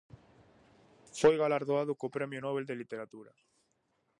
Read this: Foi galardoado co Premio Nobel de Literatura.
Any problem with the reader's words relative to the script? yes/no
no